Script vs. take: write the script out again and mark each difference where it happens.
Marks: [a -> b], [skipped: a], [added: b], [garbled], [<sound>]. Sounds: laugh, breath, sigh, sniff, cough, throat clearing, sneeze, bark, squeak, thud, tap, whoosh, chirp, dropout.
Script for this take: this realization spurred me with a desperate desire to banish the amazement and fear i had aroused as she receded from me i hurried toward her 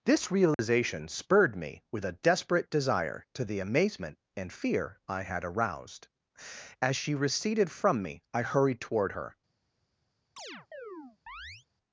this realization [dropout] spurred me with a desperate desire to [skipped: banish] the amazement and fear i had aroused as she receded from me i hurried toward her [chirp]